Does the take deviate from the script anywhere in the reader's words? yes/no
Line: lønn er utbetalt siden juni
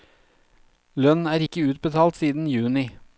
yes